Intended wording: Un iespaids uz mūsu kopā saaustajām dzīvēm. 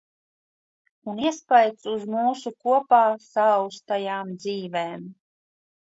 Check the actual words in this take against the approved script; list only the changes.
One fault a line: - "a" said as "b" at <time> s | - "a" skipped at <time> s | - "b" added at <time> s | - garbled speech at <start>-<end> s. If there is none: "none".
none